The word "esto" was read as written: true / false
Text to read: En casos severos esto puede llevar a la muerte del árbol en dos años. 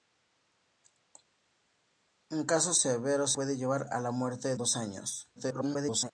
false